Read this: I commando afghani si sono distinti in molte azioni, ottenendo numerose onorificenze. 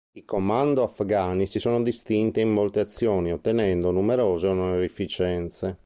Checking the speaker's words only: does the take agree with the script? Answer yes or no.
yes